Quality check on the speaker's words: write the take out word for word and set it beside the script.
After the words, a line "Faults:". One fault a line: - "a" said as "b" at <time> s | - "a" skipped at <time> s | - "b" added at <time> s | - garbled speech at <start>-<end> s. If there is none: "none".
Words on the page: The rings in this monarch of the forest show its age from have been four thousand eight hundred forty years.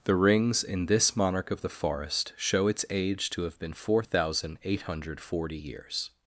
The rings in this monarch of the forest show its age to have been four thousand eight hundred forty years.
Faults:
- "from" said as "to" at 3.3 s